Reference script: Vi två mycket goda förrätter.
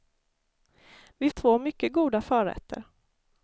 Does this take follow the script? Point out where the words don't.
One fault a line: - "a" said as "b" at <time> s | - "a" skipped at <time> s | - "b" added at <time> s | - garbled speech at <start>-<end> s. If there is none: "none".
none